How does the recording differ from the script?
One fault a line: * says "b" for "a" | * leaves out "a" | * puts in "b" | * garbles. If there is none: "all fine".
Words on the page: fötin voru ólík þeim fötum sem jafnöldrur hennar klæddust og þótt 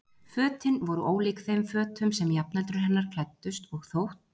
all fine